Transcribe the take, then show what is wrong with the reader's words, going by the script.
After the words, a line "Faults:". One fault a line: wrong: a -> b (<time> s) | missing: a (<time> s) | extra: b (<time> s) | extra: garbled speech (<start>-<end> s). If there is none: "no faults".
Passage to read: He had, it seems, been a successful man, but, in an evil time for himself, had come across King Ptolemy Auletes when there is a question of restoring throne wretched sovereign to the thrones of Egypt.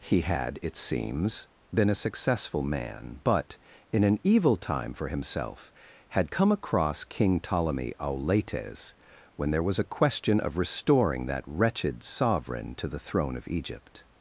He had, it seems, been a successful man, but, in an evil time for himself, had come across King Ptolemy Auletes when there was a question of restoring that wretched sovereign to the throne of Egypt.
Faults:
wrong: is -> was (9.6 s)
wrong: throne -> that (11.2 s)
wrong: thrones -> throne (13.0 s)